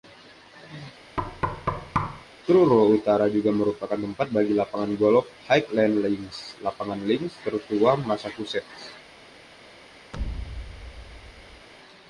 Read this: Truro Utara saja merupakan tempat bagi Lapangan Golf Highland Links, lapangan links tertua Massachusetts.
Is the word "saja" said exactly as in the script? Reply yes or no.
no